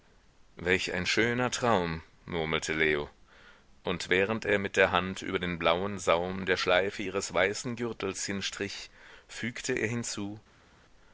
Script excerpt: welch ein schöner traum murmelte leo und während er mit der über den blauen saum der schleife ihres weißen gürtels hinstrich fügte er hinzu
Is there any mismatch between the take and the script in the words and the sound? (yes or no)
yes